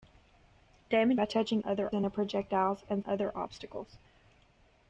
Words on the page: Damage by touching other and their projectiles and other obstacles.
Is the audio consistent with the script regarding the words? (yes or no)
yes